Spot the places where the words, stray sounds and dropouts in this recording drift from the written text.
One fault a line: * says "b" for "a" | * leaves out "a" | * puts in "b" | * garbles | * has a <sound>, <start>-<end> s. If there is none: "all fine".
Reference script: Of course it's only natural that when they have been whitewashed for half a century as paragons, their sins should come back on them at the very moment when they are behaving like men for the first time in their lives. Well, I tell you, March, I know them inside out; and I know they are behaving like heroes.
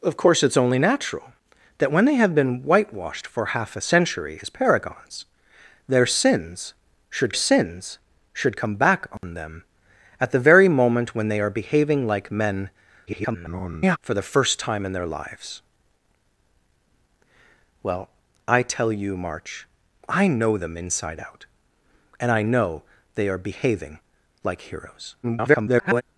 * puts in "sins should"
* has a dropout, 9.2-9.2 s
* garbles
* garbles